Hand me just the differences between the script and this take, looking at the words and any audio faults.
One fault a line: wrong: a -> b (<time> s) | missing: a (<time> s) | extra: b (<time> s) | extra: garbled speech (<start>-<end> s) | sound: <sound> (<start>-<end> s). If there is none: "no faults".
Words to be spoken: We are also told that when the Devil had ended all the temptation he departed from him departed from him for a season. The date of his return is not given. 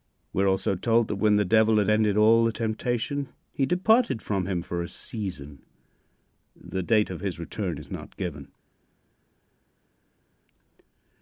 missing: departed from him (4.6 s)